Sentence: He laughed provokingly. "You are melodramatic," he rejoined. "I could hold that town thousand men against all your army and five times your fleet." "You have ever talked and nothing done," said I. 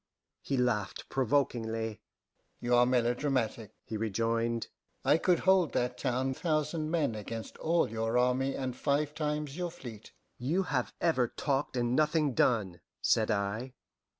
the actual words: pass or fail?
pass